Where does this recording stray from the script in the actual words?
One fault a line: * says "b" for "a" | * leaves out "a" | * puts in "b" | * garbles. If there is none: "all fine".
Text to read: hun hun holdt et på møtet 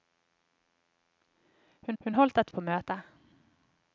all fine